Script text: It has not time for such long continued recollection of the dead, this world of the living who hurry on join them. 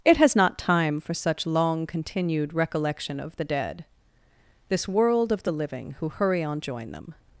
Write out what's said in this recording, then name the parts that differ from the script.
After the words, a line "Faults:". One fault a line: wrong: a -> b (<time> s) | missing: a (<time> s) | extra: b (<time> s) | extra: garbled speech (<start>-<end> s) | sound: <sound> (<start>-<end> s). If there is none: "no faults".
It has not time for such long continued recollection of the dead, this world of the living who hurry on join them.
Faults:
no faults